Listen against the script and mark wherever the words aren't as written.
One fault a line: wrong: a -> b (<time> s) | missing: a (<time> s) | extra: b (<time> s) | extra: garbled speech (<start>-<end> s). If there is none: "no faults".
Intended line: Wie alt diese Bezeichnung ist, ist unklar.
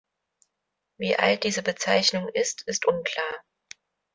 no faults